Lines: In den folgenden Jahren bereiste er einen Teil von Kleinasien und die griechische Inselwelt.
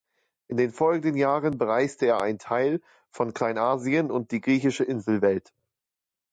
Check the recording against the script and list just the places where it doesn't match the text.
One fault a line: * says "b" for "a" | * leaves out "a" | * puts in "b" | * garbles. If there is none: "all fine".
all fine